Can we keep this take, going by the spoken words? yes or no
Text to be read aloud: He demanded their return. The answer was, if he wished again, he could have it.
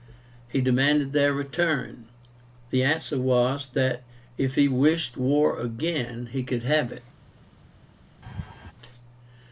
no